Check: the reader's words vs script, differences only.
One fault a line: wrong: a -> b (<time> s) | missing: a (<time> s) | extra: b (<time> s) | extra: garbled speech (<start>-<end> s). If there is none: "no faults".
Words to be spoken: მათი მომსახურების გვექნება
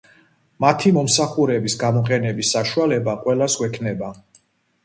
extra: გამოყენების საშუალება ყველას (1.8 s)